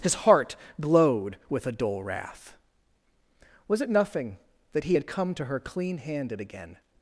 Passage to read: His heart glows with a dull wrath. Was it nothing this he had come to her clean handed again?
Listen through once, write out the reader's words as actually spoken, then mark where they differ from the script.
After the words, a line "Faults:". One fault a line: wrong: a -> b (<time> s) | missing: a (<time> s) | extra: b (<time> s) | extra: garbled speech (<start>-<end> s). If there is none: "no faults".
His heart glowed with a dull wrath. Was it nothing that he had come to her clean handed again?
Faults:
wrong: glows -> glowed (0.8 s)
wrong: this -> that (4.7 s)